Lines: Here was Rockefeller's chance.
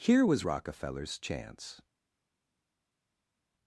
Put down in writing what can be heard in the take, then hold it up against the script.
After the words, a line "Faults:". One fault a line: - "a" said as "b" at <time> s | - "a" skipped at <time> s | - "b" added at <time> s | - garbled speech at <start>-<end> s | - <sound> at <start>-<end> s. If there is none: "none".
Here was Rockefeller's chance.
Faults:
none